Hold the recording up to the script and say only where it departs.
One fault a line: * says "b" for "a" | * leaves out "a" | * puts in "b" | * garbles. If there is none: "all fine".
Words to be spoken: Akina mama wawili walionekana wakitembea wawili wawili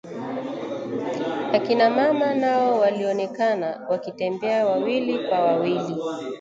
* says "nao" for "wawili"
* puts in "kwa"